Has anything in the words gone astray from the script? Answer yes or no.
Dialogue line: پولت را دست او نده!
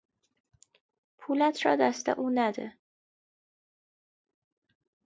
no